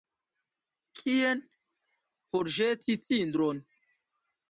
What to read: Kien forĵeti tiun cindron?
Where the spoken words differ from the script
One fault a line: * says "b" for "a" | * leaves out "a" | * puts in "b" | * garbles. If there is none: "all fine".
* leaves out "tiun"